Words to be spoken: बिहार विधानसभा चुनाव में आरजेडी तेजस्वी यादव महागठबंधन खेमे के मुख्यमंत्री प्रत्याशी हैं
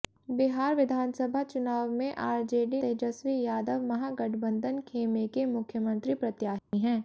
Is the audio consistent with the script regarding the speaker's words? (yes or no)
yes